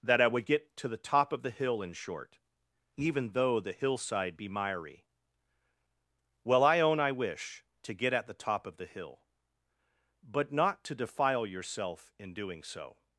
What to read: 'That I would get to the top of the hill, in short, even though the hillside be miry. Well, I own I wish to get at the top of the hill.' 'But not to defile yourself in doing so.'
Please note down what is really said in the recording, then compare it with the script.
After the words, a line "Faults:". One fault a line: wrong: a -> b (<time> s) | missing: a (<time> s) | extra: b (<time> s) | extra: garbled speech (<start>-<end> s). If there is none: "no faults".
'That I would get to the top of the hill, in short, even though the hillside be miry. Well, I own I wish to get at the top of the hill.' 'But not to defile yourself in doing so.'
Faults:
no faults